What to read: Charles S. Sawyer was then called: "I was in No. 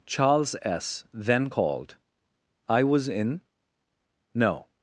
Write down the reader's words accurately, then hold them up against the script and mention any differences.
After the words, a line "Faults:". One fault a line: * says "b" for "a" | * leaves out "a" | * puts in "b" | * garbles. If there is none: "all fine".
Charles S then called: "I was in No.
Faults:
* leaves out "Sawyer was"